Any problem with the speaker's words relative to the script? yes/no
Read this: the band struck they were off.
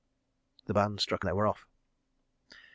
no